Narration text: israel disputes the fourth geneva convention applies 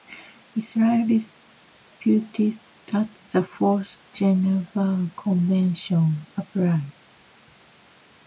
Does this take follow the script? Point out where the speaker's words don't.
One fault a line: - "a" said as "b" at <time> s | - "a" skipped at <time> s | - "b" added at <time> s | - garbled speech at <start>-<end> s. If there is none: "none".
- "that" added at 2.9 s